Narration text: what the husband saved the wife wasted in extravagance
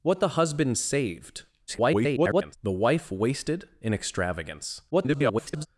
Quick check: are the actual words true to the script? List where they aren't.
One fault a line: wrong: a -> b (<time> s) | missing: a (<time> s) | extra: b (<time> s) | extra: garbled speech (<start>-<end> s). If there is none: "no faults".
extra: garbled speech (1.7-2.6 s)
extra: garbled speech (4.9-5.7 s)